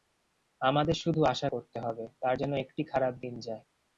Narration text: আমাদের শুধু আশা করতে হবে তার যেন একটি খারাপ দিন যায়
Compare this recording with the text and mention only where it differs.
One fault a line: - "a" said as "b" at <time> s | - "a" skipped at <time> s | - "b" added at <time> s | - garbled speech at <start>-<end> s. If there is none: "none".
none